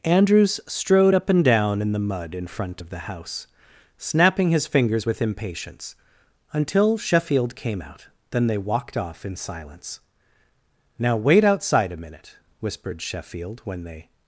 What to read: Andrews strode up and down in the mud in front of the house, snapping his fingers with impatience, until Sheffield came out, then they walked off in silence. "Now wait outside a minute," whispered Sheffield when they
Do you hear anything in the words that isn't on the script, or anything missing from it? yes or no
no